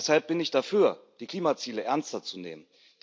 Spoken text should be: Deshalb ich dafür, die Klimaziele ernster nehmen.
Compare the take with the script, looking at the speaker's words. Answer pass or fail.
fail